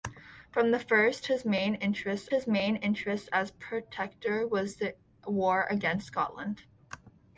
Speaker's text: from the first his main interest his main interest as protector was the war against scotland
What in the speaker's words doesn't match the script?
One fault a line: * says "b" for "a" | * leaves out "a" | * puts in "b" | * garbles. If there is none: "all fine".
all fine